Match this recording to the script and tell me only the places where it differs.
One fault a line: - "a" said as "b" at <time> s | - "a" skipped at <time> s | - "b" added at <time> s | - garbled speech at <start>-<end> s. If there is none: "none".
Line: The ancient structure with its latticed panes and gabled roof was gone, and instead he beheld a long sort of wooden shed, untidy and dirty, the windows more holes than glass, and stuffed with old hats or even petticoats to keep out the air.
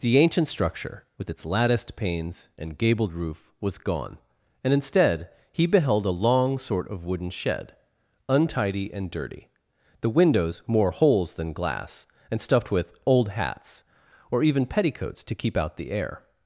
none